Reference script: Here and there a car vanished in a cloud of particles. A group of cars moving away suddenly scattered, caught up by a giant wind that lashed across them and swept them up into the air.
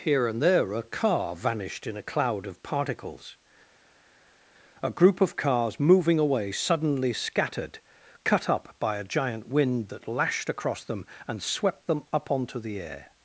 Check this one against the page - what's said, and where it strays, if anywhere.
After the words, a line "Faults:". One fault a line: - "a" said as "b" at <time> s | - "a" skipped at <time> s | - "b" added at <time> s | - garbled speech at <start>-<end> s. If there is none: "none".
Here and there a car vanished in a cloud of particles. A group of cars moving away suddenly scattered, cut up by a giant wind that lashed across them and swept them up onto the air.
Faults:
- "caught" said as "cut" at 8.2 s
- "into" said as "onto" at 12.3 s